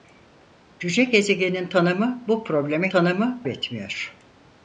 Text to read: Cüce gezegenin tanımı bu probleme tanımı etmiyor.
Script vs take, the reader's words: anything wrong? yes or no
no